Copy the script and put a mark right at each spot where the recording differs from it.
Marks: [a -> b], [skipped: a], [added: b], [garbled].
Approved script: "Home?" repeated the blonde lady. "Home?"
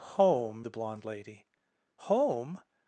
"Home?" [skipped: repeated] the blonde lady. "Home?"